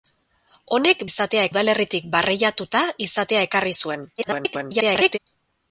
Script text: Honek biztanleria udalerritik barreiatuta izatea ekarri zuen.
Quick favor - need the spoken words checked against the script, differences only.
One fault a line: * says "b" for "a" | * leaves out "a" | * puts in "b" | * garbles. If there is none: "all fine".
* says "izatea" for "biztanleria"
* garbles